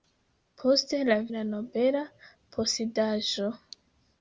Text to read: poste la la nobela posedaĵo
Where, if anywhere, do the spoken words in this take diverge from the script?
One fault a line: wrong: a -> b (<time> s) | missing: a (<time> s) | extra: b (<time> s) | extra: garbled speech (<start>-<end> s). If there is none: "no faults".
no faults